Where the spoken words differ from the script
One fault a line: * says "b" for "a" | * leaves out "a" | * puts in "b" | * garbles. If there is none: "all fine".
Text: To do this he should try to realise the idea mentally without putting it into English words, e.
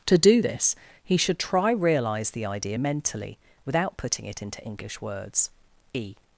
* leaves out "to"